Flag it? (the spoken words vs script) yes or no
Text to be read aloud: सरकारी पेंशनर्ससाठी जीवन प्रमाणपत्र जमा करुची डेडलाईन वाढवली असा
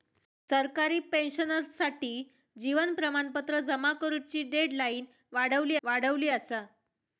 yes